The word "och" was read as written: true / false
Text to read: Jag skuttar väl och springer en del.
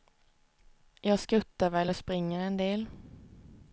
true